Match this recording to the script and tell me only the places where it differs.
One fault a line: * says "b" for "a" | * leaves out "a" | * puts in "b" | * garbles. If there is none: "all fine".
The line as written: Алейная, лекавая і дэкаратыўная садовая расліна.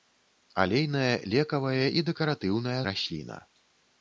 * leaves out "садовая"